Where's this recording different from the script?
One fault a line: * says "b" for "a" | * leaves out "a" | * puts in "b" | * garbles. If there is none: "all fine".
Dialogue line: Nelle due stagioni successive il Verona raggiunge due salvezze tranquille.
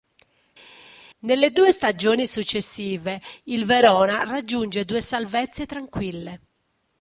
all fine